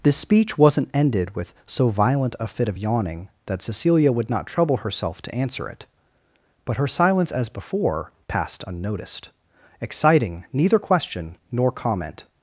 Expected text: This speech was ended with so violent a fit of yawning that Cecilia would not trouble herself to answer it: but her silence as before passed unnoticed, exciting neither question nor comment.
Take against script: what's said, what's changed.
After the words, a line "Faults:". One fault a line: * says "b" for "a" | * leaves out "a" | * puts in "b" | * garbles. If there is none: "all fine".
This speech wasn't ended with so violent a fit of yawning that Cecilia would not trouble herself to answer it: but her silence as before passed unnoticed, exciting neither question nor comment.
Faults:
* says "wasn't" for "was"